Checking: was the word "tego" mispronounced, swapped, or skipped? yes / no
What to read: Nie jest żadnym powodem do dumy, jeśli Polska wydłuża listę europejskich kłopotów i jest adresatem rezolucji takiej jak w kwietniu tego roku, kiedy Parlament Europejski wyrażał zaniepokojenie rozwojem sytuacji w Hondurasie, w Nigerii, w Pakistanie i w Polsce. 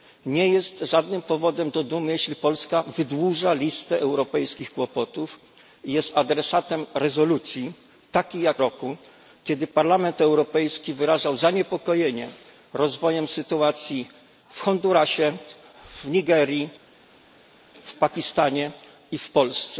yes